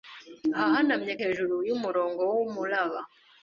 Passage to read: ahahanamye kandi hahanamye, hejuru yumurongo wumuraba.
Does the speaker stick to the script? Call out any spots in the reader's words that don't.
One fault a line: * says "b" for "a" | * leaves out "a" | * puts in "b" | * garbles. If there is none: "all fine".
* leaves out "kandi hahanamye"